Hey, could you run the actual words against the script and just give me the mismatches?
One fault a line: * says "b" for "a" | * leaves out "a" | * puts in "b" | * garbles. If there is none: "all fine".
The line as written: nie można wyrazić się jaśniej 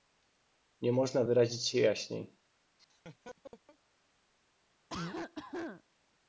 all fine